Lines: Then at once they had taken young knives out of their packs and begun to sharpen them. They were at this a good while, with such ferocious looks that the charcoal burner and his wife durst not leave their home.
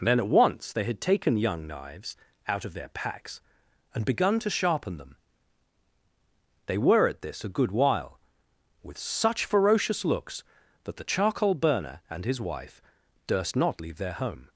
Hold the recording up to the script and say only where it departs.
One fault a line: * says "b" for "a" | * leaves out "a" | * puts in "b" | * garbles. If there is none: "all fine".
all fine